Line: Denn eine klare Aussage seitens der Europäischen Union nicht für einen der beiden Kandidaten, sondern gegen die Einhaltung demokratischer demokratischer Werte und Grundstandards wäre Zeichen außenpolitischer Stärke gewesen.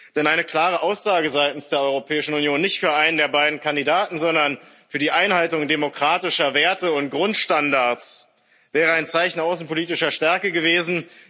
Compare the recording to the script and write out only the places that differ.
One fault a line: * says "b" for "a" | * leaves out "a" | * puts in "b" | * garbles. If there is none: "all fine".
* says "für" for "gegen"
* leaves out "demokratischer"
* puts in "ein"